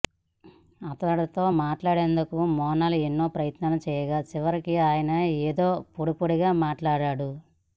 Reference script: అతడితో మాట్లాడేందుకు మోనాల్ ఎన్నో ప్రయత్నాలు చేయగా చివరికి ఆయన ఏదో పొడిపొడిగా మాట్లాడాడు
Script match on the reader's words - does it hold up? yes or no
yes